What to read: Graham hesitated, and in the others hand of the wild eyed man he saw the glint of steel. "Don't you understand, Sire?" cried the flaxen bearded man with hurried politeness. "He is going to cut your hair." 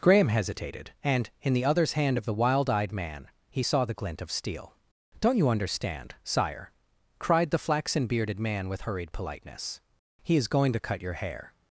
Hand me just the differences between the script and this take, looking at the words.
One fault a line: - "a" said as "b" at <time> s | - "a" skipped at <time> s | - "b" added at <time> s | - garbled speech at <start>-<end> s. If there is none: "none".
none